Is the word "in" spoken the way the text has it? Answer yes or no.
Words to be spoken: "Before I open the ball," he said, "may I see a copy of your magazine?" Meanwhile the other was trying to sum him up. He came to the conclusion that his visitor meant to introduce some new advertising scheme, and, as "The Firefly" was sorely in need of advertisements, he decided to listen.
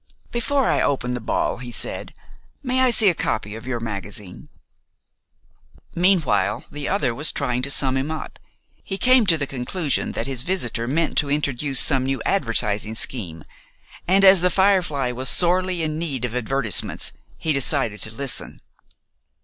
yes